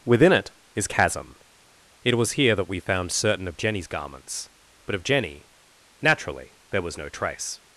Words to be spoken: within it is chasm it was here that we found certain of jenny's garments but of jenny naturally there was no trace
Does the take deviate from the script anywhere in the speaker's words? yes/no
no